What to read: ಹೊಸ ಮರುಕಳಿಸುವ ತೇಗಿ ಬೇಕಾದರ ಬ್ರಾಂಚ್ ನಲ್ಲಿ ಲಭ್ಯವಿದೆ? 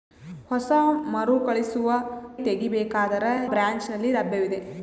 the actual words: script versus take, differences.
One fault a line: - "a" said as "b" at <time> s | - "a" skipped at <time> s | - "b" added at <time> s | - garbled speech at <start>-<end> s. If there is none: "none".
none